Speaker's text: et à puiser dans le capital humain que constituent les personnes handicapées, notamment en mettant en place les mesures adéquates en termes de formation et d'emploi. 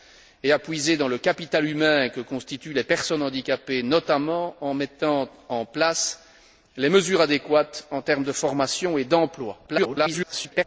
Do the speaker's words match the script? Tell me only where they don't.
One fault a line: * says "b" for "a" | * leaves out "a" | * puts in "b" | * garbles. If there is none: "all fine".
* garbles